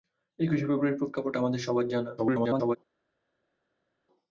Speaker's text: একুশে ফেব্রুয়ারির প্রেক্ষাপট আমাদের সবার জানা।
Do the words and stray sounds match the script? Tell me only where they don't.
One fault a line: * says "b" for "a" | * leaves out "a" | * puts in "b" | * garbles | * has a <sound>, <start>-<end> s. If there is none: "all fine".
* garbles